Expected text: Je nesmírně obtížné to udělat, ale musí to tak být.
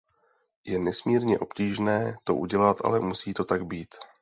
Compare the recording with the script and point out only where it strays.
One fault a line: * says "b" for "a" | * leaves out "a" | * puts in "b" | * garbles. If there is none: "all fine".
all fine